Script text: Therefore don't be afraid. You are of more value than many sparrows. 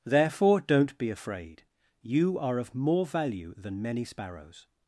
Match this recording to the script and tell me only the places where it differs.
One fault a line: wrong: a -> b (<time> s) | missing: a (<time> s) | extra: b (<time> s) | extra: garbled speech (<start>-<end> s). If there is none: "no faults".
no faults